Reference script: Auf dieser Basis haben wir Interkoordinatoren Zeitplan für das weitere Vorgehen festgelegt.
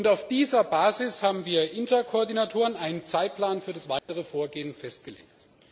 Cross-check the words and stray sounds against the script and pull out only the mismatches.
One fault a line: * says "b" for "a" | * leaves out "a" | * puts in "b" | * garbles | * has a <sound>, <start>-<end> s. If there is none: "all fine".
* puts in "einen"
* has a dropout, 4.0-4.1 s